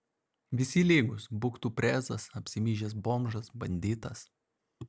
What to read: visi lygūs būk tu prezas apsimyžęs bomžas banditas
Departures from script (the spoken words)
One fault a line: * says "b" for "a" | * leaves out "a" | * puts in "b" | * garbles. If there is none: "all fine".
all fine